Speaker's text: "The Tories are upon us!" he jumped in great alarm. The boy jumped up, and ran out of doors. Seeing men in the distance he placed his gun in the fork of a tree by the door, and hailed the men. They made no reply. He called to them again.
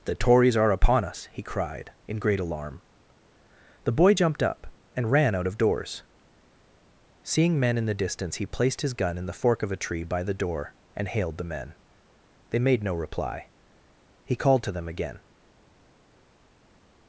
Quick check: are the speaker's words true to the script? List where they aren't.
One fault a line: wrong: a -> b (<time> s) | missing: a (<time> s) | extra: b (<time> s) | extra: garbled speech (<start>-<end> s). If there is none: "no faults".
wrong: jumped -> cried (1.4 s)